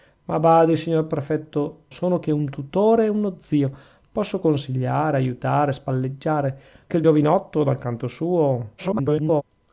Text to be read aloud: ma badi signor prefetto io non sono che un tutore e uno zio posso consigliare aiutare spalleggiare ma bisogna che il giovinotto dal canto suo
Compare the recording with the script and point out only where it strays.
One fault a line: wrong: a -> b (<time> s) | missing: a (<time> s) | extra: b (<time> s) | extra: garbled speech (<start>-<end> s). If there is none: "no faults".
missing: io non (1.8 s)
missing: ma bisogna (6.6 s)
extra: garbled speech (8.8-9.4 s)